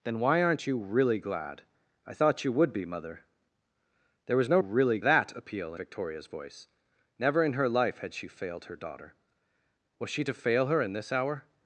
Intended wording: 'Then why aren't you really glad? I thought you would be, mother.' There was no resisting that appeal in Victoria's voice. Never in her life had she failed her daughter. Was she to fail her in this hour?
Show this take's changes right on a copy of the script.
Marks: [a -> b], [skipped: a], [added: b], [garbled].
'Then why aren't you really glad? I thought you would be, mother.' There was no [resisting -> really] that appeal [skipped: in] Victoria's voice. Never in her life had she failed her daughter. Was she to fail her in this hour?